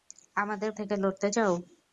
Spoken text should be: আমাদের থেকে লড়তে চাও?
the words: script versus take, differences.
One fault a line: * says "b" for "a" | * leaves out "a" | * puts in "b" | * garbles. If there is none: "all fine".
all fine